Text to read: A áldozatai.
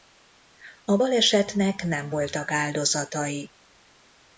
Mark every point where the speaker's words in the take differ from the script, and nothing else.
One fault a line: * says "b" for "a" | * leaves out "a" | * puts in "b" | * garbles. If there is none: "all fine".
* puts in "balesetnek nem voltak"